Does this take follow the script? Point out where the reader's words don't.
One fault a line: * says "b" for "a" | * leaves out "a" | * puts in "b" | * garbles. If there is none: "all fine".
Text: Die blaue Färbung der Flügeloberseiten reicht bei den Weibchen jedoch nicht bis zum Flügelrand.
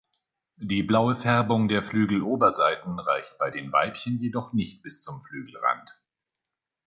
all fine